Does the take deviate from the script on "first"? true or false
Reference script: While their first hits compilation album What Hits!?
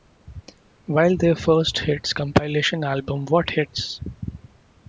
false